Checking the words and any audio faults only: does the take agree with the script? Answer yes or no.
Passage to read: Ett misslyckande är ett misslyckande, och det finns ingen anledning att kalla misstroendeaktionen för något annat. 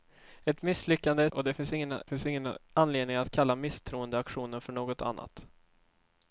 no